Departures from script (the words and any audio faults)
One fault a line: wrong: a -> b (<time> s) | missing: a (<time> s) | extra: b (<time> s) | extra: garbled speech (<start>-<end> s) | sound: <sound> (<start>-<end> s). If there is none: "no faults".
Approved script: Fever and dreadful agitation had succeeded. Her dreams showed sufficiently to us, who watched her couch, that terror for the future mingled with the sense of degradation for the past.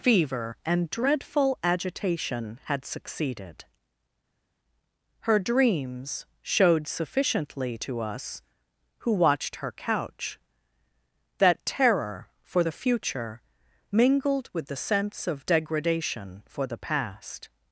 no faults